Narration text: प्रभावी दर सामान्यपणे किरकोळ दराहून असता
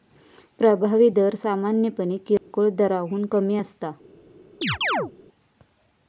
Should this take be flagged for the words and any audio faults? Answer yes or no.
yes